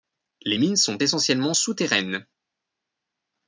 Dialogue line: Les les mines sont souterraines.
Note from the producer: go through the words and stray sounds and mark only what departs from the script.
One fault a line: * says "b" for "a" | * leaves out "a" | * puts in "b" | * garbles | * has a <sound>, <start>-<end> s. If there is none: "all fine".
* leaves out "les"
* puts in "essentiellement"